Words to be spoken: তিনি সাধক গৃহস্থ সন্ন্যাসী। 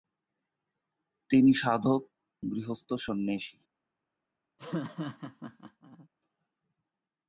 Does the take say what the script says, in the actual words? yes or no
yes